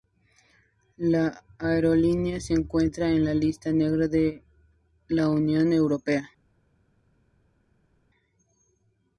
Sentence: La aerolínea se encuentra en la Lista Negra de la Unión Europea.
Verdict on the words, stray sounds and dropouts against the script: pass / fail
pass